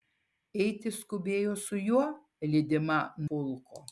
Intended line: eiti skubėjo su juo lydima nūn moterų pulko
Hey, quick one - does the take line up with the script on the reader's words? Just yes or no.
no